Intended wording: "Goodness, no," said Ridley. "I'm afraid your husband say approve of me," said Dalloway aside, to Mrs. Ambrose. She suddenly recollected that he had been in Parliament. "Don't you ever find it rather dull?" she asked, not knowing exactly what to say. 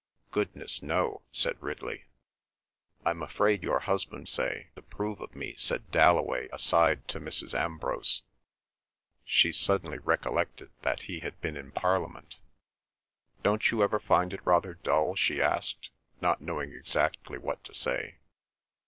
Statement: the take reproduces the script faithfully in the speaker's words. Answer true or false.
true